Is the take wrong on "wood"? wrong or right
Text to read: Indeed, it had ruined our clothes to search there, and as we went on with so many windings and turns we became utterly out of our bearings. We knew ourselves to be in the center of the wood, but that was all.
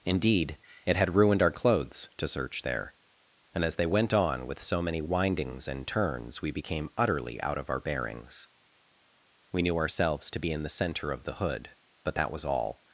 wrong